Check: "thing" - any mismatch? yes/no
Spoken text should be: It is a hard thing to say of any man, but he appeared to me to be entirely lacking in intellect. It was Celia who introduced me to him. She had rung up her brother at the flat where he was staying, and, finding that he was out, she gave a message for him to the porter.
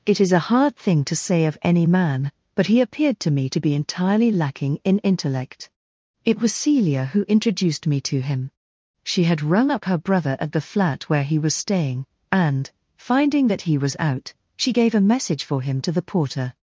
no